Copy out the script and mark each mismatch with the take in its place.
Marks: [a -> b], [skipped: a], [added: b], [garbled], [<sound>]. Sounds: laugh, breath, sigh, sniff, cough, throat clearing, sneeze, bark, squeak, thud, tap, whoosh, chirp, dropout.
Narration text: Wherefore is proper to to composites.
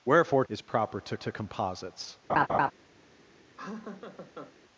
Wherefore is proper to to composites. [laugh] [laugh]